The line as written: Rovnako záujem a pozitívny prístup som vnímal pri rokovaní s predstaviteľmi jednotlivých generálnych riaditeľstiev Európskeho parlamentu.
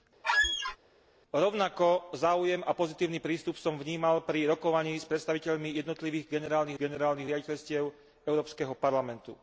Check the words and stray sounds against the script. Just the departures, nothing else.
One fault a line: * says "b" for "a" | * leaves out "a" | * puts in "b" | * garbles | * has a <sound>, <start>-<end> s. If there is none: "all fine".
* has a squeak, 0.2-0.8 s
* puts in "generálnych"